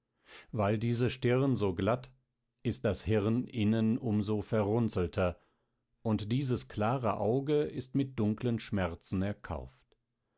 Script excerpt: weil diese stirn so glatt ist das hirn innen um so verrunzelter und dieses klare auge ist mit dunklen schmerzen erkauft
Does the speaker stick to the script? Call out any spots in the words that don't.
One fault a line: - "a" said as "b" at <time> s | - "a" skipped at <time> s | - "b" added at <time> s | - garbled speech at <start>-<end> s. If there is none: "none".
none